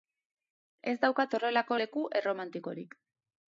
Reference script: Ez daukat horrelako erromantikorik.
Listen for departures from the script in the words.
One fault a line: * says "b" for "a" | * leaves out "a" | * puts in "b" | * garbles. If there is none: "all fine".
* puts in "leku"